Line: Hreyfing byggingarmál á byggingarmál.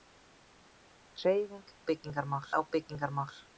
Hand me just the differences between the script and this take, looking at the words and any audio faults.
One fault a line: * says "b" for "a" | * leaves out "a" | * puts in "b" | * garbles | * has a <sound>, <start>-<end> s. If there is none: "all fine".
all fine